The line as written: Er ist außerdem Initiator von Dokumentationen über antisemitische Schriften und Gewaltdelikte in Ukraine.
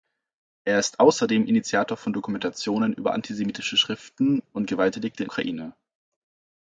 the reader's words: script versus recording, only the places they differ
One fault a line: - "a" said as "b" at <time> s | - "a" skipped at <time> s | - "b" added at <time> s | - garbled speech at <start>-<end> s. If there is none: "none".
none